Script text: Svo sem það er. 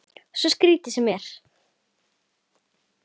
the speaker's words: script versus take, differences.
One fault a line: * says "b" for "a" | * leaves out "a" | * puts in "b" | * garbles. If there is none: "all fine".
* puts in "skrítið"